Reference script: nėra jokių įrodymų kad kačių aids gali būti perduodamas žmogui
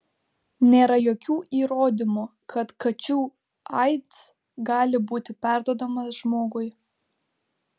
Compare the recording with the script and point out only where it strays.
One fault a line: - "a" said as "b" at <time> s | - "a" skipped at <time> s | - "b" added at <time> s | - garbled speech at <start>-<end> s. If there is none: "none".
none